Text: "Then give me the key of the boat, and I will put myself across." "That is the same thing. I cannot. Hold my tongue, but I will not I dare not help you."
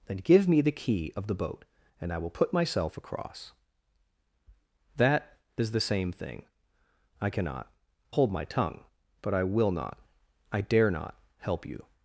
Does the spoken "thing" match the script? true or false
true